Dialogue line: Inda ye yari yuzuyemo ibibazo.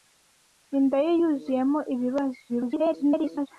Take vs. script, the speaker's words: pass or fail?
fail